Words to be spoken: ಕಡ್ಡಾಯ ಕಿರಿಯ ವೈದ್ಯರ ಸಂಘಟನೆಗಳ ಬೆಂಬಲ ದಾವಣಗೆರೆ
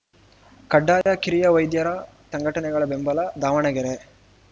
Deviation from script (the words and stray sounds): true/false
true